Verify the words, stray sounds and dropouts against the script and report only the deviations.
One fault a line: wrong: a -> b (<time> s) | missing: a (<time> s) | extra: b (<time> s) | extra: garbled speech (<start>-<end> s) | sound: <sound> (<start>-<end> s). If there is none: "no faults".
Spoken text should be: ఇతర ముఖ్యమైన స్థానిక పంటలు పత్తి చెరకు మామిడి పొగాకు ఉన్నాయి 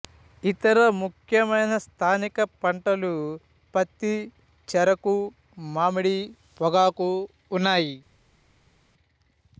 no faults